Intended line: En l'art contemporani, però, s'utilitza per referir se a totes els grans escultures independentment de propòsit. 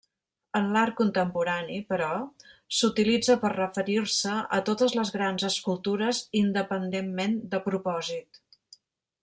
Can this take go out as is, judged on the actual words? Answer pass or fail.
fail